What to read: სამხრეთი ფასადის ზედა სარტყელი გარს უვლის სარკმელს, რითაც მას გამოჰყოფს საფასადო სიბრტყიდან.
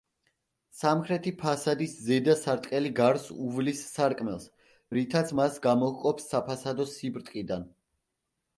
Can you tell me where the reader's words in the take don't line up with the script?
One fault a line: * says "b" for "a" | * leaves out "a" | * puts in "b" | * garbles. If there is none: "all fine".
all fine